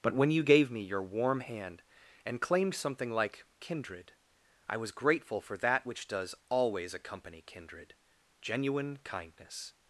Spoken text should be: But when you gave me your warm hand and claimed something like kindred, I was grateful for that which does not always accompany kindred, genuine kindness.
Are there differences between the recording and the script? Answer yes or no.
yes